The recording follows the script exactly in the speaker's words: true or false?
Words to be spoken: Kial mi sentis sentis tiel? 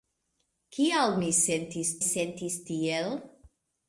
true